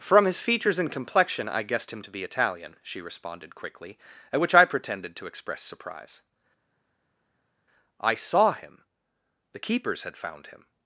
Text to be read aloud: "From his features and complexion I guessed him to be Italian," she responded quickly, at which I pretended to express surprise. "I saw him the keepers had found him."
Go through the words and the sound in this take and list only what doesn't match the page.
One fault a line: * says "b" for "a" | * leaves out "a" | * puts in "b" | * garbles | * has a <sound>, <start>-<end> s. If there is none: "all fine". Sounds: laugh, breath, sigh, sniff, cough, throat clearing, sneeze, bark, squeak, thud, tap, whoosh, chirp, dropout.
all fine